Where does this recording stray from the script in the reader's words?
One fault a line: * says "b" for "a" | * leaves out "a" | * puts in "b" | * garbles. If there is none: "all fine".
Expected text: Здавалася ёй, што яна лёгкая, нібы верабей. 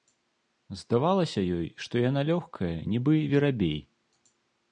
all fine